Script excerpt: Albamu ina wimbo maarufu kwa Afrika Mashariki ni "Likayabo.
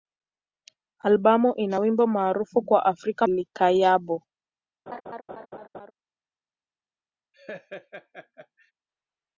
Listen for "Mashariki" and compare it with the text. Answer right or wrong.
wrong